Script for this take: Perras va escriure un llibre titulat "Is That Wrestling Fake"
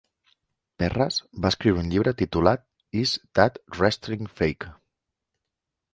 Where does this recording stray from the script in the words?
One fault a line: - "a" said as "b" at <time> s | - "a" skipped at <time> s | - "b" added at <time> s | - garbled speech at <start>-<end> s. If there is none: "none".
none